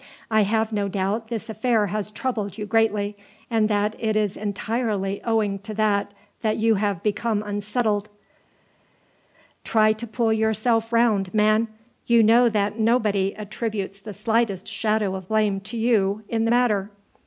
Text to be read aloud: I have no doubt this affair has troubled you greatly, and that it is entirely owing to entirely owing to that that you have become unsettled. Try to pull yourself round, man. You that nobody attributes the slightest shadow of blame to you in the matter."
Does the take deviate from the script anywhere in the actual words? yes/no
yes